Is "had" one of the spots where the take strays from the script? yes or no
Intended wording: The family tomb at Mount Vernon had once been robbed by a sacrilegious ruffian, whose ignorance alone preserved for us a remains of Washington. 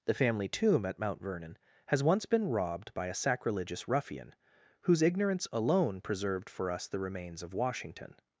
yes